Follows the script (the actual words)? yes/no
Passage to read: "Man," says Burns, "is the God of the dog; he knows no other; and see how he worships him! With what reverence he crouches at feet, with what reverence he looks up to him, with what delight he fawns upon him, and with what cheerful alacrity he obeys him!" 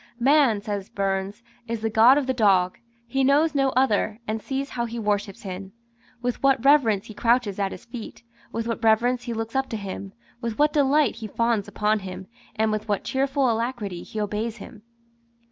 no